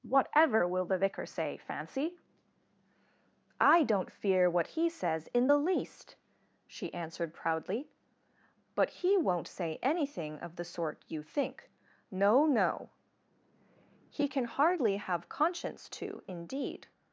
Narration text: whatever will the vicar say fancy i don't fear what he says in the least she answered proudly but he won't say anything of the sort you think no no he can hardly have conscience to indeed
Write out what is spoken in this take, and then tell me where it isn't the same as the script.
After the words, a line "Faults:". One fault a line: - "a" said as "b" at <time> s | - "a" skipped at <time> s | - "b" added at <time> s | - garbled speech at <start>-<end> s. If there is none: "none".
whatever will the vicar say fancy i don't fear what he says in the least she answered proudly but he won't say anything of the sort you think no no he can hardly have conscience to indeed
Faults:
none